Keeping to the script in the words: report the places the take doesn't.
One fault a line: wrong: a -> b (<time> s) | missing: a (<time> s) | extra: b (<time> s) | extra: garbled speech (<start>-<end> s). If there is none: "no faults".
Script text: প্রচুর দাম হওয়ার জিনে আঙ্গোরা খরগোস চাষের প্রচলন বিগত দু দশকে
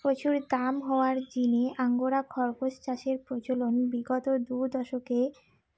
no faults